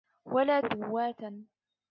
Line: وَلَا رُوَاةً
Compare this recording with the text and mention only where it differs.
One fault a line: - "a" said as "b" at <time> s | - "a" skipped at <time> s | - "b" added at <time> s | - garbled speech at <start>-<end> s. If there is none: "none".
none